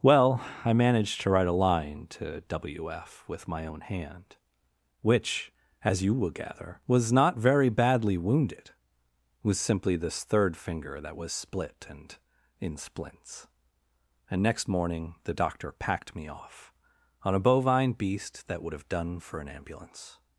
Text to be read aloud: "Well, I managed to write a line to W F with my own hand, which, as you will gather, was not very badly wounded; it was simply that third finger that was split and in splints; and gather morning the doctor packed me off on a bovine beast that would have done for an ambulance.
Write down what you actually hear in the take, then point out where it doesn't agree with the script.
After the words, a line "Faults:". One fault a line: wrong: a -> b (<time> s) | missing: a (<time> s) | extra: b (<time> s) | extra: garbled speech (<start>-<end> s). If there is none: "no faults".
"Well, I managed to write a line to W F with my own hand, which, as you will gather, was not very badly wounded; it was simply this third finger that was split and in splints; and next morning the doctor packed me off on a bovine beast that would have done for an ambulance.
Faults:
wrong: that -> this (10.0 s)
wrong: gather -> next (14.4 s)